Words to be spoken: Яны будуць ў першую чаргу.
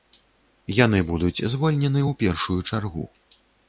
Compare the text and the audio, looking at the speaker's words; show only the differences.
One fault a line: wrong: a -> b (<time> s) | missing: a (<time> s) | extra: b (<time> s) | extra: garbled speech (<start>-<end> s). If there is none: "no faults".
extra: звольнены (1.5 s)